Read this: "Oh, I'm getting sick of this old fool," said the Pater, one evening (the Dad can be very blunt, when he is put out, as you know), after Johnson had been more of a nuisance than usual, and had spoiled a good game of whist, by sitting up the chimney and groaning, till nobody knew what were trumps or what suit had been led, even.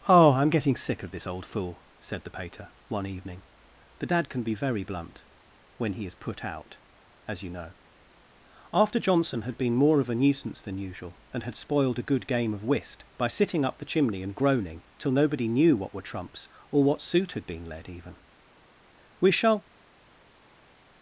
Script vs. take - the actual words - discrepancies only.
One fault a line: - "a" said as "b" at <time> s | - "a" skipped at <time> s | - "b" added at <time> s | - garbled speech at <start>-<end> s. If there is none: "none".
- "We shall" added at 19.2 s